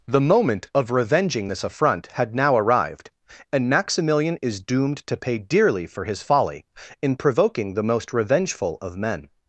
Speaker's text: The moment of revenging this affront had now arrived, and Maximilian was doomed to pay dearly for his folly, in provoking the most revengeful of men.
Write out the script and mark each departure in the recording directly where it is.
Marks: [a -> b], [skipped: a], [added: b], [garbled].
The moment of revenging this affront had now arrived, and Maximilian [was -> is] doomed to pay dearly for his folly, in provoking the most revengeful of men.